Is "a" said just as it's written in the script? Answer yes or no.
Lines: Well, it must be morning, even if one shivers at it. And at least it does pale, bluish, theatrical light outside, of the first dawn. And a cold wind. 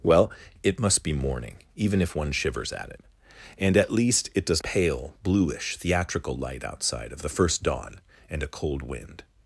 yes